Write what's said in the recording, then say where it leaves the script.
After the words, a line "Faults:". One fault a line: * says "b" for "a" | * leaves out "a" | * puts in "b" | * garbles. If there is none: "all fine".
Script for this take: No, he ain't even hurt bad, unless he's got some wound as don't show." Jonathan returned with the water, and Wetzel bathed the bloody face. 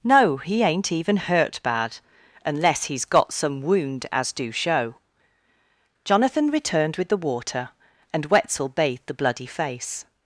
No, he ain't even hurt bad, unless he's got some wound as do show." Jonathan returned with the water, and Wetzel bathed the bloody face.
Faults:
* says "do" for "don't"